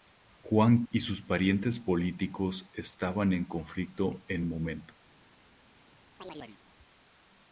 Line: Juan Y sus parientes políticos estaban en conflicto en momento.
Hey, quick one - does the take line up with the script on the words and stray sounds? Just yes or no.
no